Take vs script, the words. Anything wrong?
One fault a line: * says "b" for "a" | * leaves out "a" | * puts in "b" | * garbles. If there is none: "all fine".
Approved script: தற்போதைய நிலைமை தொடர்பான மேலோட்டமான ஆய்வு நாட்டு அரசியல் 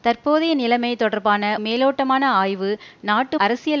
all fine